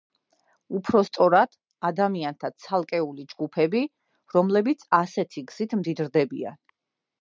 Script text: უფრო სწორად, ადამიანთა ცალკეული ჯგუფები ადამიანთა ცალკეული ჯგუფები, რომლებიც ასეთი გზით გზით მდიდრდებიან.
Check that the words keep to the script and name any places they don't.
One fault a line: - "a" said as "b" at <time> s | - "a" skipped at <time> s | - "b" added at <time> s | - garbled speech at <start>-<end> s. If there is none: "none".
- "ადამიანთა ცალკეული ჯგუფები" skipped at 3.8 s
- "გზით" skipped at 5.8 s